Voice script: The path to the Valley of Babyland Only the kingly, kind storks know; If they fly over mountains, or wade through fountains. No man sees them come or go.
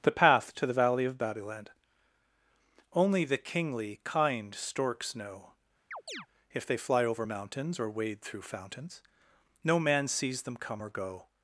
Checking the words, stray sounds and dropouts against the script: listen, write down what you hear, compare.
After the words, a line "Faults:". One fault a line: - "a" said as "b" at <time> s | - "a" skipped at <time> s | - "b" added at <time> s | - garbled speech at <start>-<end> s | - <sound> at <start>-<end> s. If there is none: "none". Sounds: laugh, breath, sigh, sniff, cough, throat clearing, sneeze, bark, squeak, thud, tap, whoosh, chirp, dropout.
The path to the Valley of Babyland Only the kingly, kind storks know; If they fly over mountains, or wade through fountains. No man sees them come or go.
Faults:
- chirp at 5.9-6.3 s